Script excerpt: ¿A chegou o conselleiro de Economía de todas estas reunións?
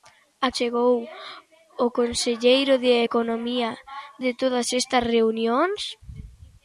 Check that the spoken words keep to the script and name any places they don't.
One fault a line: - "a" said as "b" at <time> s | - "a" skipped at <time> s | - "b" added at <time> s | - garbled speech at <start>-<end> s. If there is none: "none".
none